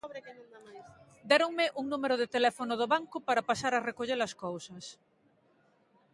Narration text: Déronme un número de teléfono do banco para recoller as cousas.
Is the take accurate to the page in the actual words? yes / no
no